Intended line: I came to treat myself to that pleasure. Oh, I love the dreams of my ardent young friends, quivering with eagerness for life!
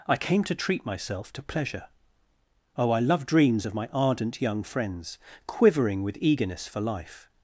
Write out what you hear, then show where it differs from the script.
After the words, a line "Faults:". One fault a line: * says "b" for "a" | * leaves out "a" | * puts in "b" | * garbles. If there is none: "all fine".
I came to treat myself to pleasure. Oh, I love dreams of my ardent young friends, quivering with eagerness for life!
Faults:
* leaves out "that"
* leaves out "the"